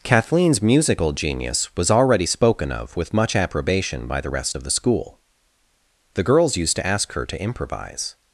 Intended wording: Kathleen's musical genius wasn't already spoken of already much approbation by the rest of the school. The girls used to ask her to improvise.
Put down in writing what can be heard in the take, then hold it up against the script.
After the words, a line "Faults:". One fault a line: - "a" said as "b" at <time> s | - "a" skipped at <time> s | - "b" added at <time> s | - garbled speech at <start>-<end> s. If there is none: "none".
Kathleen's musical genius was already spoken of with much approbation by the rest of the school. The girls used to ask her to improvise.
Faults:
- "wasn't" said as "was" at 1.8 s
- "already" said as "with" at 3.0 s